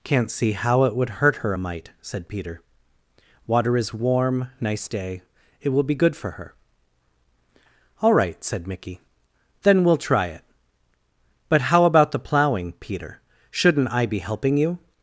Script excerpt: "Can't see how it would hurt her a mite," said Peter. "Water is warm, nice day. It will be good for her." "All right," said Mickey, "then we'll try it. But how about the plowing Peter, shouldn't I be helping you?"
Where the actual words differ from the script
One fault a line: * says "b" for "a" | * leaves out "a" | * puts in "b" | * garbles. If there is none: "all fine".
all fine